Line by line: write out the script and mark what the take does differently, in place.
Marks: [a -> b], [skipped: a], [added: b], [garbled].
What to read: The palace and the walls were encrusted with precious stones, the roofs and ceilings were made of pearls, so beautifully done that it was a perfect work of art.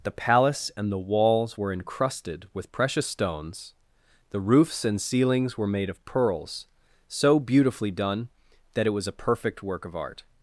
The palace and the walls were encrusted with precious stones, the roofs and ceilings were made of pearls, so beautifully done that it was a perfect work of art.